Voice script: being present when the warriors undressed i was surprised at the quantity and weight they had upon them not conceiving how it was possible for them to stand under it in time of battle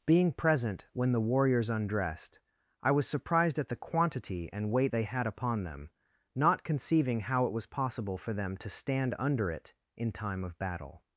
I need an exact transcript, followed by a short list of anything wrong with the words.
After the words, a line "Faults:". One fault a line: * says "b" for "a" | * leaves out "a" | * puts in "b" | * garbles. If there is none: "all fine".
being present when the warriors undressed i was surprised at the quantity and weight they had upon them not conceiving how it was possible for them to stand under it in time of battle
Faults:
all fine